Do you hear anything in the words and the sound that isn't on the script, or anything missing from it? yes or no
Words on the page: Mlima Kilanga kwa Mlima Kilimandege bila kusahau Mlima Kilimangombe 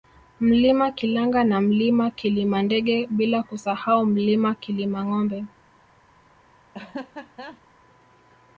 yes